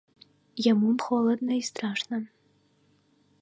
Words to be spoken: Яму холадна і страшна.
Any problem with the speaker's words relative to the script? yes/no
no